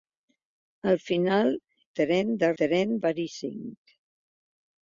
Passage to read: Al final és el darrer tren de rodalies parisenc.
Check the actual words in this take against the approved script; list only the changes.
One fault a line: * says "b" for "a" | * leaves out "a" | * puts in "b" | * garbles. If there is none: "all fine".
* leaves out "és el darrer"
* says "tren" for "rodalies"